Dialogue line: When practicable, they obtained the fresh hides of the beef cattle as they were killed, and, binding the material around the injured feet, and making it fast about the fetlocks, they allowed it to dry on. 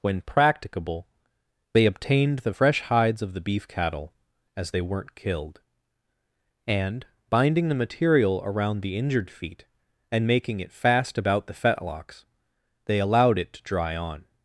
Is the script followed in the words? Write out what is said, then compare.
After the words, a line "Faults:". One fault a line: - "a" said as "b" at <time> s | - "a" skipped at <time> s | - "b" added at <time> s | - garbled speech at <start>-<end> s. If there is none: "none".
When practicable, they obtained the fresh hides of the beef cattle as they weren't killed, and, binding the material around the injured feet, and making it fast about the fetlocks, they allowed it to dry on.
Faults:
- "were" said as "weren't" at 4.8 s